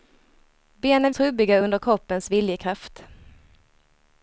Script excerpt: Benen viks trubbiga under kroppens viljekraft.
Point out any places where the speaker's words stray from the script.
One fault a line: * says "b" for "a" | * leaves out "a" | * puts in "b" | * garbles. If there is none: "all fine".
* leaves out "viks"